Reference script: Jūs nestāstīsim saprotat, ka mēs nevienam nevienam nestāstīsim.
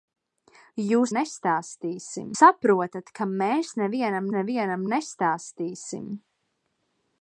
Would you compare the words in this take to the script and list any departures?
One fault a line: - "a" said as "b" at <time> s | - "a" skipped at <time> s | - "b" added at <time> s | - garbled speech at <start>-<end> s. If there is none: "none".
none